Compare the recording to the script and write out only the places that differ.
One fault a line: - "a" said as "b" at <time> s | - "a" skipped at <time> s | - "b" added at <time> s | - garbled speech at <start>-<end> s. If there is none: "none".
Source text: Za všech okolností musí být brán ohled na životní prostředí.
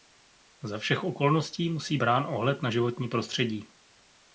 - "být" skipped at 2.0 s